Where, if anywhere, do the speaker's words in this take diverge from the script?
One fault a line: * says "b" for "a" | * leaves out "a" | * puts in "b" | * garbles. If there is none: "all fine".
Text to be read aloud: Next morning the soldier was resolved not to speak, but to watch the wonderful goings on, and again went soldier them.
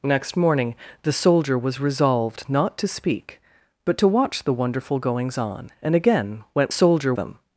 all fine